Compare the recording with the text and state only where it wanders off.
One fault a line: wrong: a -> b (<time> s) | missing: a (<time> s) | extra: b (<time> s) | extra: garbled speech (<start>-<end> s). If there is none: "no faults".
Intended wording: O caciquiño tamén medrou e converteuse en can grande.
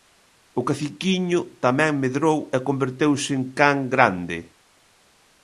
no faults